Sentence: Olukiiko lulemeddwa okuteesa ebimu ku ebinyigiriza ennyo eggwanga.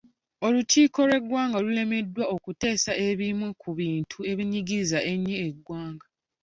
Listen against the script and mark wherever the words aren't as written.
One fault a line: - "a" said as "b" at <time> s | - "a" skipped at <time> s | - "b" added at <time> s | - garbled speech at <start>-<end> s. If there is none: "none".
- "lw'eggwanga" added at 1.1 s
- "bintu" added at 3.8 s